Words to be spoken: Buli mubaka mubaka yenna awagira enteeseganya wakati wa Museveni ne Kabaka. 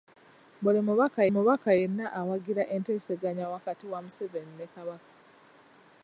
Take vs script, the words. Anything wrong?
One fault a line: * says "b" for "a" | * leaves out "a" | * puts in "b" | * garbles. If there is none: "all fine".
all fine